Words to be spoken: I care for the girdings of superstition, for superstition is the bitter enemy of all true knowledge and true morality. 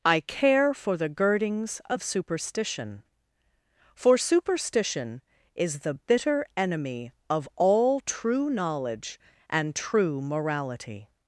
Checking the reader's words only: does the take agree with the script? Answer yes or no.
yes